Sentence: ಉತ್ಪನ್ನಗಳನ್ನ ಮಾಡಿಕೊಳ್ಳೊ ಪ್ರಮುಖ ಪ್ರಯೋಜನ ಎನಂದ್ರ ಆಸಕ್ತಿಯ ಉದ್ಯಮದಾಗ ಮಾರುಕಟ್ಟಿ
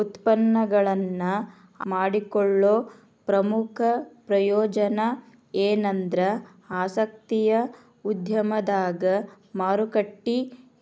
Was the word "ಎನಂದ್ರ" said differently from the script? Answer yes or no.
no